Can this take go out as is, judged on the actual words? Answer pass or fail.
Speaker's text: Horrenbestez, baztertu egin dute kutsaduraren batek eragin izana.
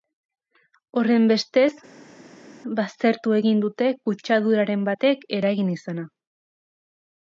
pass